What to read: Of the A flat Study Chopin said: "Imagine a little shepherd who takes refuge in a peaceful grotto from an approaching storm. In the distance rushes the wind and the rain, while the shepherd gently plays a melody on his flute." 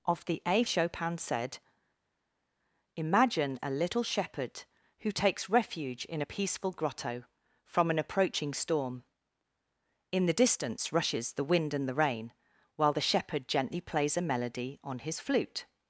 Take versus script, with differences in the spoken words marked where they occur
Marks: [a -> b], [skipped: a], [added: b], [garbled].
Of the A [skipped: flat Study] Chopin said: "Imagine a little shepherd who takes refuge in a peaceful grotto from an approaching storm. In the distance rushes the wind and the rain, while the shepherd gently plays a melody on his flute."